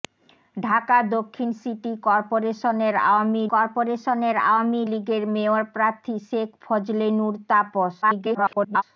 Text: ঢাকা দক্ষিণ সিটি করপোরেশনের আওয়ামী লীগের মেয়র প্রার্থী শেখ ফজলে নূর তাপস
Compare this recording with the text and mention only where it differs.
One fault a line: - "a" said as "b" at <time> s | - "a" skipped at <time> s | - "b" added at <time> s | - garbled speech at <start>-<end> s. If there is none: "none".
- "করপোরেশনের আওয়ামী" added at 3.5 s
- garbled speech at 8.0-8.8 s